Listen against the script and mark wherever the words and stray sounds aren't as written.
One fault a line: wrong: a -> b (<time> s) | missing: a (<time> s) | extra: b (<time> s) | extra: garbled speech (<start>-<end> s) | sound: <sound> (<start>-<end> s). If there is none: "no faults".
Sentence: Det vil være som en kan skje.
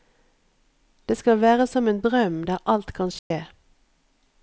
wrong: vil -> skal (1.2 s)
extra: drøm der alt (2.0 s)
sound: dropout (3.2-3.3 s)